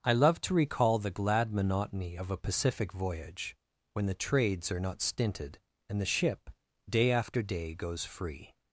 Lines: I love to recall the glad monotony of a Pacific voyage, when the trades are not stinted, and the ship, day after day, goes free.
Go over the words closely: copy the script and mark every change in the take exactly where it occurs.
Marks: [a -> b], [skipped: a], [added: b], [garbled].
I love to recall the glad monotony of a Pacific voyage, when the trades are not stinted, and the ship, day after day, goes free.